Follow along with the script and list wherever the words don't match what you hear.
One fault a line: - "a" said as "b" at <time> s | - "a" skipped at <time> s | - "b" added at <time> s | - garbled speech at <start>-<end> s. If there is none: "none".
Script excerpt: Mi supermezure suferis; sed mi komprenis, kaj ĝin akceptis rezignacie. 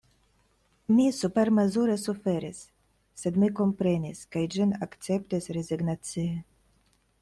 none